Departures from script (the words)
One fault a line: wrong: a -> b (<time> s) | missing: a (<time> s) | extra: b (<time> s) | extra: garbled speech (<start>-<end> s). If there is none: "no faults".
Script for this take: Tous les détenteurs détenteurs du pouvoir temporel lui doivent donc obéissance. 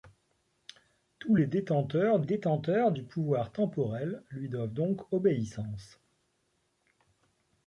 no faults